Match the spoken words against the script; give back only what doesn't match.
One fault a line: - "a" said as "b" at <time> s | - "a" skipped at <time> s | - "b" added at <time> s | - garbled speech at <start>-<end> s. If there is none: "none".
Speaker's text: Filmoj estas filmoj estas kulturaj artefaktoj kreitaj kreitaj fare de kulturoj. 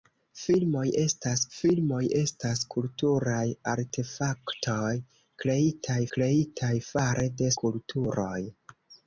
none